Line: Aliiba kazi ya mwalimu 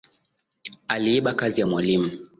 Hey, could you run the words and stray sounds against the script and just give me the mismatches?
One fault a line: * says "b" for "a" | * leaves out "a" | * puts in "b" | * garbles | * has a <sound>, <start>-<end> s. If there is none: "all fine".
all fine